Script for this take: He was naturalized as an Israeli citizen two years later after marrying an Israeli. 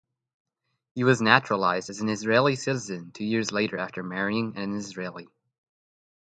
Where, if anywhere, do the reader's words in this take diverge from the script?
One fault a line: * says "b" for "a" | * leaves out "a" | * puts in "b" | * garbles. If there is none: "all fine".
all fine